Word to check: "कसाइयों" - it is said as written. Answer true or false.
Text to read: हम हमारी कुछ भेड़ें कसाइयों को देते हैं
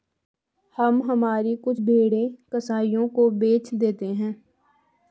true